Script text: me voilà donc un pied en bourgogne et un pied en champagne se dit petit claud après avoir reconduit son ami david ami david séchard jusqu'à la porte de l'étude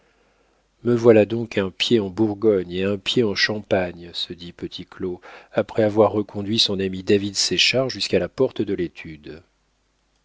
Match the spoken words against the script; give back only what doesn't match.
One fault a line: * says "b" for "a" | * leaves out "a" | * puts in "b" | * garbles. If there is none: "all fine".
* leaves out "ami david"